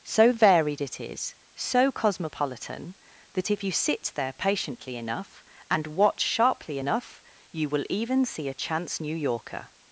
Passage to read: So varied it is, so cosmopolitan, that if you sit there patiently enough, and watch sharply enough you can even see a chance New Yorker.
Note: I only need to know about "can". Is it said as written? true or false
false